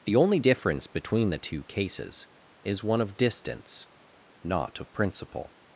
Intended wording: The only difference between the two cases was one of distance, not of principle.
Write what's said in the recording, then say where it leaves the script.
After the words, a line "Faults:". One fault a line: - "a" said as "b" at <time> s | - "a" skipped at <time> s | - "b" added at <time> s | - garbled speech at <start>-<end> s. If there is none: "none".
The only difference between the two cases is one of distance, not of principle.
Faults:
- "was" said as "is" at 2.6 s